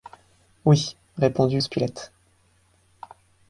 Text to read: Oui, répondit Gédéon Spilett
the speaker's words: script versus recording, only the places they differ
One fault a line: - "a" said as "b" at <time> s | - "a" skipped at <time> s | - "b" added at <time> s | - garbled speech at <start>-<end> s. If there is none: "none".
- "Gédéon" skipped at 1.6 s